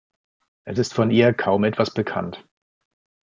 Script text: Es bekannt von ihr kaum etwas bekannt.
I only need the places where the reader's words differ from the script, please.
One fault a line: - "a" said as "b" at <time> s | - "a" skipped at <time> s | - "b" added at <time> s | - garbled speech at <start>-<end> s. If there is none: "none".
- "bekannt" said as "ist" at 0.8 s